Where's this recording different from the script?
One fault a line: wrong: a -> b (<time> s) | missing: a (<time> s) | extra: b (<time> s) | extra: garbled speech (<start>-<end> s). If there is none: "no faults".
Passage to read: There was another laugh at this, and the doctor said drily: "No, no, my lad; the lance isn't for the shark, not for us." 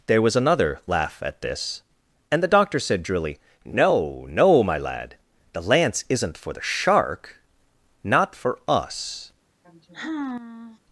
no faults